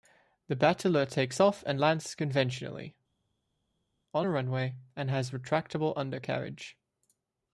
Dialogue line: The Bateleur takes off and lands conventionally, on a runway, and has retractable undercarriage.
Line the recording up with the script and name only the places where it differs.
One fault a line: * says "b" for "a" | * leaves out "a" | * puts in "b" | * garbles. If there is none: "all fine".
all fine